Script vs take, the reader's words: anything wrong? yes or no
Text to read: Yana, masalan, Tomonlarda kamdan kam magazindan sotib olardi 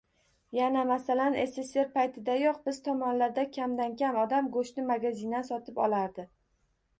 yes